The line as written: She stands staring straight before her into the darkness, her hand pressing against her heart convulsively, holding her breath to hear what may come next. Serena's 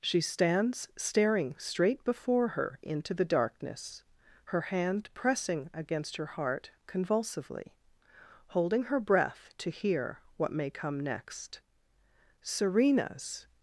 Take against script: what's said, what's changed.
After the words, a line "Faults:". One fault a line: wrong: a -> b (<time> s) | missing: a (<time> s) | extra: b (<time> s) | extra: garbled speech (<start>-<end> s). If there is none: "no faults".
She stands staring straight before her into the darkness, her hand pressing against her heart convulsively, holding her breath to hear what may come next. Serena's
Faults:
no faults